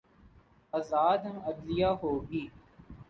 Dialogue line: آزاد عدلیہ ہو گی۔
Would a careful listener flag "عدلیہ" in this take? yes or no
no